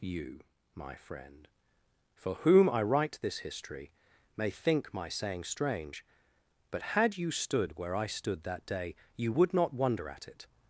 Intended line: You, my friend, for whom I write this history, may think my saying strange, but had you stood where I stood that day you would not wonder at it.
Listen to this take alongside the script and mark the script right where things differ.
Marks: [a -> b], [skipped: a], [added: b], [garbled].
You, my friend, for whom I write this history, may think my saying strange, but had you stood where I stood that day you would not wonder at it.